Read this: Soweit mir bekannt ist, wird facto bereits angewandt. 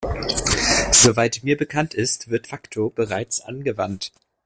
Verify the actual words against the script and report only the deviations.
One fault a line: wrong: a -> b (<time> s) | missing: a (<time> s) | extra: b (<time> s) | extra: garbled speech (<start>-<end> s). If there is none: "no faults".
no faults